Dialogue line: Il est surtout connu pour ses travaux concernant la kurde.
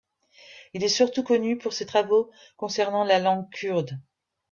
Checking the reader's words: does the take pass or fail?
fail